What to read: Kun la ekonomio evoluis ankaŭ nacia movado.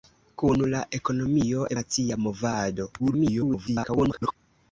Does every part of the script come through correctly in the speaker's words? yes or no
no